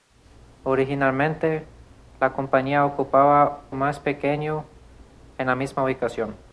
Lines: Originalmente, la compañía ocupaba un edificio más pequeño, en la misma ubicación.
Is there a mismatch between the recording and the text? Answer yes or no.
yes